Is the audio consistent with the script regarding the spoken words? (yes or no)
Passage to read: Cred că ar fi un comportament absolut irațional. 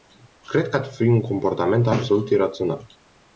yes